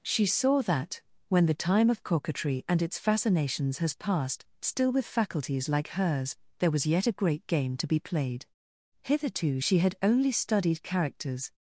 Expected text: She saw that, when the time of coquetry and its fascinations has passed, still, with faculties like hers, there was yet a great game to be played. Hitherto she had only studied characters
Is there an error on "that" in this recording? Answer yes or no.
no